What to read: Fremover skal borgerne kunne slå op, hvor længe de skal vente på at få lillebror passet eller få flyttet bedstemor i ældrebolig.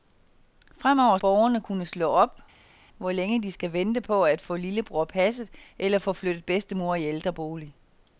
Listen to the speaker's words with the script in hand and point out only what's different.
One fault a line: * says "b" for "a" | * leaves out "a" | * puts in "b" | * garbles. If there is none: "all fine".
* leaves out "skal"